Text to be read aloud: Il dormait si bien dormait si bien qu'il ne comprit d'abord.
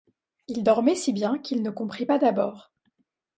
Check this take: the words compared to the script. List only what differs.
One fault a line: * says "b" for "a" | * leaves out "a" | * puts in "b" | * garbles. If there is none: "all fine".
* leaves out "dormait si bien"
* puts in "pas"